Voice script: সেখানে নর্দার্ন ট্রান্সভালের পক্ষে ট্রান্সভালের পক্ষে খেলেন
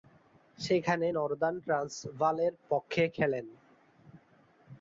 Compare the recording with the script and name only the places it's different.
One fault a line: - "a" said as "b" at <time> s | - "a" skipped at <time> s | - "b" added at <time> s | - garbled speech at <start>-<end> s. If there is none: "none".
- "ট্রান্সভালের পক্ষে" skipped at 3.0 s